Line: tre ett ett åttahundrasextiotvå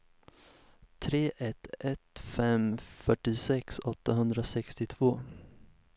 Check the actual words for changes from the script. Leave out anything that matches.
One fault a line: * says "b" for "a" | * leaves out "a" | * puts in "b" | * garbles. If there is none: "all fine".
* puts in "fem fyrtiosex"